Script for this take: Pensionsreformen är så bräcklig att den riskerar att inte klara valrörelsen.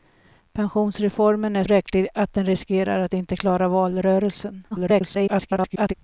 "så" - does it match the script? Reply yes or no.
no